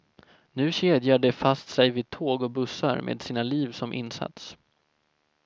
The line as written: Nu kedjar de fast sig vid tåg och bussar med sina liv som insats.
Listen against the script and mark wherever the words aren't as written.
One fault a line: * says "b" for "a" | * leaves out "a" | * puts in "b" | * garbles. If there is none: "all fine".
all fine